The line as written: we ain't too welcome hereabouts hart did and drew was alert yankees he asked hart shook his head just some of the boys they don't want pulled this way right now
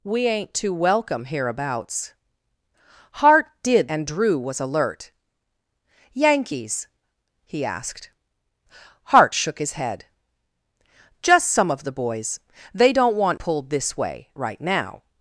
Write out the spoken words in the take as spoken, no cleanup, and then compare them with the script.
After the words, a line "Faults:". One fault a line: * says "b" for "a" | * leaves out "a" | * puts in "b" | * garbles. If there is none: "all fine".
we ain't too welcome hereabouts hart did and drew was alert yankees he asked hart shook his head just some of the boys they don't want pulled this way right now
Faults:
all fine